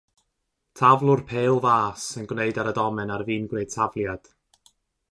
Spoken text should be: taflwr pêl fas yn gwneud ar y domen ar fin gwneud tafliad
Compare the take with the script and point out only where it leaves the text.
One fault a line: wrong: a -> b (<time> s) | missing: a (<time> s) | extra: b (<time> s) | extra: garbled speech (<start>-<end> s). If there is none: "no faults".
no faults